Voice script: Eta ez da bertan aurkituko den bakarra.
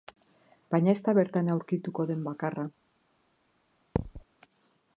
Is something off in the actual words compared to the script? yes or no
yes